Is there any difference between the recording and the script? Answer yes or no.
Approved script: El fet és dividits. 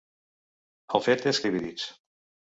no